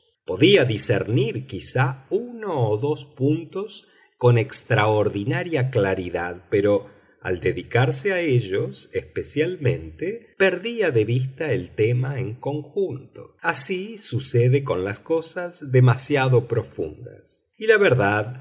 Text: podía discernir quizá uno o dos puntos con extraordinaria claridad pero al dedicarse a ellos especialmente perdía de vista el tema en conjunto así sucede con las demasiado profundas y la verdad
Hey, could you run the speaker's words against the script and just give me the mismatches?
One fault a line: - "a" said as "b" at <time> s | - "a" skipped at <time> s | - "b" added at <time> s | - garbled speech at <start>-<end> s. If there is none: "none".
- "cosas" added at 15.0 s